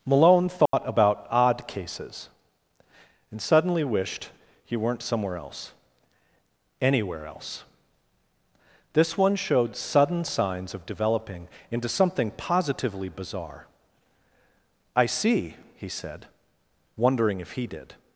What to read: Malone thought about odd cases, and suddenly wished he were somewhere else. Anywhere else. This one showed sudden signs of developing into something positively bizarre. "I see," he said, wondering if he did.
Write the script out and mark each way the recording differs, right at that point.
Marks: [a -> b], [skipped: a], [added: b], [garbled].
Malone thought about odd cases, and suddenly wished he [were -> weren't] somewhere else. Anywhere else. This one showed sudden signs of developing into something positively bizarre. "I see," he said, wondering if he did.